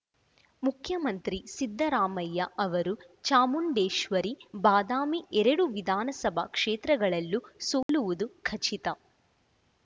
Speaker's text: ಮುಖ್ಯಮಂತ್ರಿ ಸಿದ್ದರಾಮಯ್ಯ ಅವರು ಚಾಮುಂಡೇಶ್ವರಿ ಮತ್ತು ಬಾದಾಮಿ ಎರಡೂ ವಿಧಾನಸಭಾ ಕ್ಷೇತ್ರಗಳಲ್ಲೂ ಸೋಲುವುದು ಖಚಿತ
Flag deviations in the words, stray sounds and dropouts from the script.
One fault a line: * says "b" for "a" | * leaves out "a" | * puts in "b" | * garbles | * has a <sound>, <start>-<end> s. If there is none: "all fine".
* leaves out "ಮತ್ತು"
* has a dropout, 7.8-7.9 s